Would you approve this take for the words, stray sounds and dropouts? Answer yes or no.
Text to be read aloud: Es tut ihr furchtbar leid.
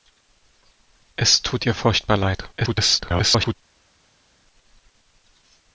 no